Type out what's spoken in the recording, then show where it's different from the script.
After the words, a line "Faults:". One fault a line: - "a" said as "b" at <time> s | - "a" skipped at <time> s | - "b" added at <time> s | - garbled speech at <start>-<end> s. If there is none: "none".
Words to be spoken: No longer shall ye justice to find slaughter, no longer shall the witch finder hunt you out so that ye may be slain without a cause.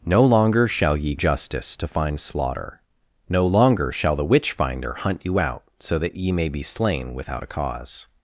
No longer shall ye justice to find slaughter, no longer shall the witch finder hunt you out so that ye may be slain without a cause.
Faults:
none